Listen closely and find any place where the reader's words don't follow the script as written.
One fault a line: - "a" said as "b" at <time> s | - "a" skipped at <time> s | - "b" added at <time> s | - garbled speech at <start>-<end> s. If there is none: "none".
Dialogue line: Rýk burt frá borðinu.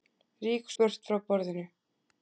none